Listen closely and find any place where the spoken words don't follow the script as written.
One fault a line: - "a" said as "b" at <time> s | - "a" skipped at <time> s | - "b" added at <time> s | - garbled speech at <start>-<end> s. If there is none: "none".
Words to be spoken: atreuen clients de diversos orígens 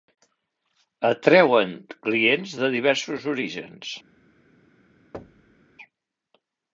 none